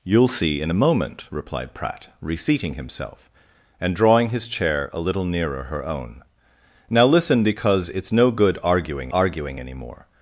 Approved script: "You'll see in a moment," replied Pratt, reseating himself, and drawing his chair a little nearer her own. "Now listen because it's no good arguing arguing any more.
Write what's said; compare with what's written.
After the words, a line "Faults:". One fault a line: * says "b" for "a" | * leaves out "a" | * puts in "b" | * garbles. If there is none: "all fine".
"You'll see in a moment," replied Pratt, reseating himself, and drawing his chair a little nearer her own. "Now listen because it's no good arguing arguing any more.
Faults:
all fine